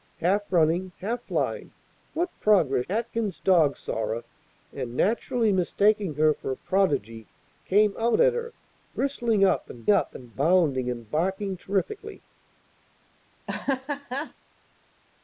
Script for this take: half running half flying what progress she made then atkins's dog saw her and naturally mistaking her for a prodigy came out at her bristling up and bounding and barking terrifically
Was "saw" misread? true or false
false